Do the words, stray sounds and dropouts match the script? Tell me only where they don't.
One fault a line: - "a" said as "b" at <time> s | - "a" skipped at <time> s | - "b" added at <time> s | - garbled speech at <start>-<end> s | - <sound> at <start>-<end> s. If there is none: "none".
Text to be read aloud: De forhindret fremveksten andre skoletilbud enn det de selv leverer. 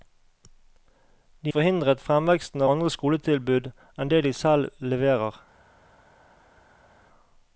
none